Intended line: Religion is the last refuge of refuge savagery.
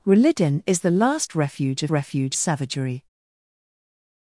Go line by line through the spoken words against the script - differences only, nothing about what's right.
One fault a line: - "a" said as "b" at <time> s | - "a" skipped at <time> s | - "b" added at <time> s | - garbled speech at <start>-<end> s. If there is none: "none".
none